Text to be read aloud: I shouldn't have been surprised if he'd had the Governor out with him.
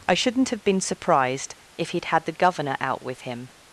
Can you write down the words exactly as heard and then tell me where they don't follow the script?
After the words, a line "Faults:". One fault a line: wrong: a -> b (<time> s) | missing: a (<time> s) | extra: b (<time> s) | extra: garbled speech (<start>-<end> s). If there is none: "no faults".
I shouldn't have been surprised if he'd had the Governor out with him.
Faults:
no faults